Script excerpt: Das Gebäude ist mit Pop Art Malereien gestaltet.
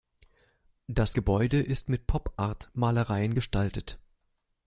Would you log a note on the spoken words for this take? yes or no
no